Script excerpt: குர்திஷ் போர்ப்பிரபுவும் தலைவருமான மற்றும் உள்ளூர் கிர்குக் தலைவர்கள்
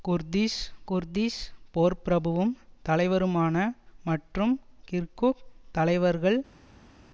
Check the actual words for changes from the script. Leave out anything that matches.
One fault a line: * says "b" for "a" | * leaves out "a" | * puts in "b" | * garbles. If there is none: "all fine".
* puts in "குர்திஷ்"
* leaves out "உள்ளூர்"